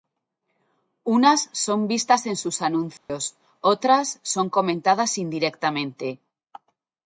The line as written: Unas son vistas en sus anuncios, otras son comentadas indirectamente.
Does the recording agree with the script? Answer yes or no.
yes